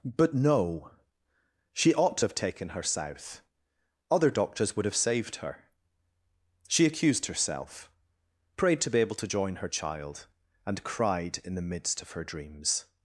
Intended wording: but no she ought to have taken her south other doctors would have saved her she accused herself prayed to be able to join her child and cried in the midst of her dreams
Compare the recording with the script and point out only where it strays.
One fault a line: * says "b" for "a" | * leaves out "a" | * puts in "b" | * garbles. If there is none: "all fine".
all fine